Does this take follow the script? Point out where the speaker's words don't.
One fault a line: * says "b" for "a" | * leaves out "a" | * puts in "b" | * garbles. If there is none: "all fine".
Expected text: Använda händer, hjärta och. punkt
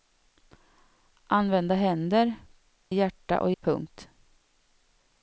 all fine